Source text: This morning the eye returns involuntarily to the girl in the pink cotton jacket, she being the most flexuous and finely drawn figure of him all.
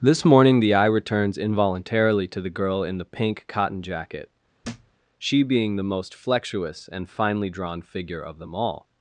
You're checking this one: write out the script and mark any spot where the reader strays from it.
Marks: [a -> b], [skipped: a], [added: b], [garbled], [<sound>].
This morning the eye returns involuntarily to the girl in the pink cotton jacket, [thud] she being the most flexuous and finely drawn figure of [him -> them] all.